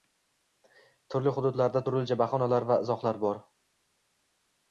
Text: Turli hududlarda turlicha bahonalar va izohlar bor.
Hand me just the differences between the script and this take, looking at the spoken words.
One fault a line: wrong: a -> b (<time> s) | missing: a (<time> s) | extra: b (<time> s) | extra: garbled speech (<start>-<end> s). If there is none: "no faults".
no faults